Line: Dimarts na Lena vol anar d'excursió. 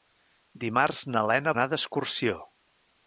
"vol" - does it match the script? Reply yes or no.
no